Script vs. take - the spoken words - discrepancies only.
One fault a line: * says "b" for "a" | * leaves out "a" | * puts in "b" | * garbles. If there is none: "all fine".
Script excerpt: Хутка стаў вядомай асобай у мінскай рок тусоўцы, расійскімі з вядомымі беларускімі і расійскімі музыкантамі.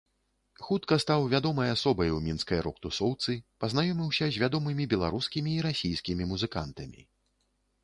* says "пазнаёміўся" for "расійскімі"